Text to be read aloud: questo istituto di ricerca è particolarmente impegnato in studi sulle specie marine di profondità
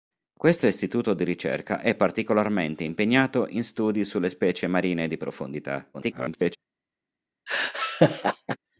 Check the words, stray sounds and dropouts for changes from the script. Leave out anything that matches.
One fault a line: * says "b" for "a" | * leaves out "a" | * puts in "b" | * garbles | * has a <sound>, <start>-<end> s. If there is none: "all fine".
* garbles
* has a laugh, 7.5-8.6 s